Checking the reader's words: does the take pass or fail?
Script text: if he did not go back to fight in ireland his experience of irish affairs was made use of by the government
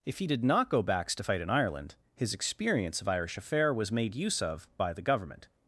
fail